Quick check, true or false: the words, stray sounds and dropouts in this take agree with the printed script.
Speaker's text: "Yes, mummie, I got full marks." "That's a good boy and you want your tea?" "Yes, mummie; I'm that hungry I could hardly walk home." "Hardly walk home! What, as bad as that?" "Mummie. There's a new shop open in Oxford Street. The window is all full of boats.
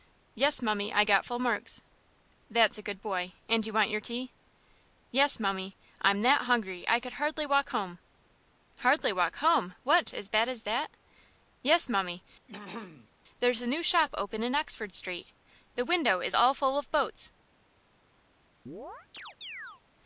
false